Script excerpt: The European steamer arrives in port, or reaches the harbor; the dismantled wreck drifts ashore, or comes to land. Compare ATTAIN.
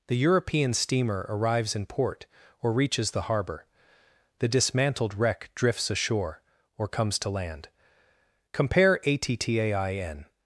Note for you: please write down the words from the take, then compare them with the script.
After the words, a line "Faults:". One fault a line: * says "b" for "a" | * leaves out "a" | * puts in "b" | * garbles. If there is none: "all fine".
The European steamer arrives in port, or reaches the harbor; the dismantled wreck drifts ashore, or comes to land. Compare ATTAIN.
Faults:
all fine